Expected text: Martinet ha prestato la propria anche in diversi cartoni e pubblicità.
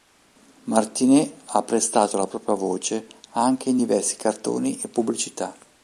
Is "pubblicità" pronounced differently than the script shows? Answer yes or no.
no